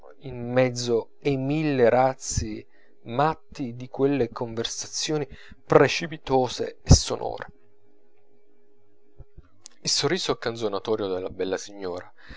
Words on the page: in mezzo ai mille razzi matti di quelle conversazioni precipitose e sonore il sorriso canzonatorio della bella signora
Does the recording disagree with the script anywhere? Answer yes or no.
no